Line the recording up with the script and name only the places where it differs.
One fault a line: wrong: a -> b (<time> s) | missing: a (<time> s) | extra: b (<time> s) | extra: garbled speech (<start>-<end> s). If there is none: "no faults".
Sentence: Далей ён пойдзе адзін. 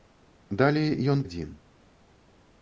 missing: пойдзе (1.2 s)